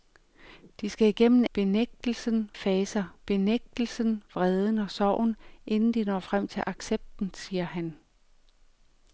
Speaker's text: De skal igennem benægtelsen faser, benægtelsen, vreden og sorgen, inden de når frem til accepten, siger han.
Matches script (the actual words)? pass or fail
pass